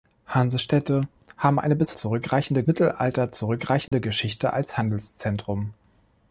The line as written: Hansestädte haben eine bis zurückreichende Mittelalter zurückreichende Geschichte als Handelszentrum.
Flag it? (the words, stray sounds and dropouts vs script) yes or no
yes